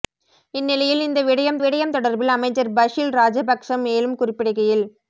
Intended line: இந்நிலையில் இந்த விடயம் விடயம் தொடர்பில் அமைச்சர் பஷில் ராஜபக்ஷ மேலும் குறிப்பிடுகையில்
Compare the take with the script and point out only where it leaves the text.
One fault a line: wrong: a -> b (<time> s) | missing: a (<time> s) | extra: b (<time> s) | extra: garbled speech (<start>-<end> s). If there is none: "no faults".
no faults